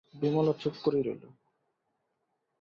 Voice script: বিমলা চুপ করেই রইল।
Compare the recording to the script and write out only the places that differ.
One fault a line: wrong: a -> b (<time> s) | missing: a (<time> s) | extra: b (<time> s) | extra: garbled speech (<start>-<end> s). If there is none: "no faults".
no faults